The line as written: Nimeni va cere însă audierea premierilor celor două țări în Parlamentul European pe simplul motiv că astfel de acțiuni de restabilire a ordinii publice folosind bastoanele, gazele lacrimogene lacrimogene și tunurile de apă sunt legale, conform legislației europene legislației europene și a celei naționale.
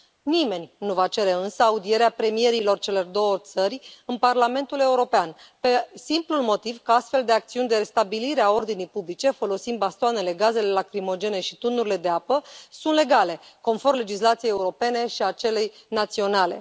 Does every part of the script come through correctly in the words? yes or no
no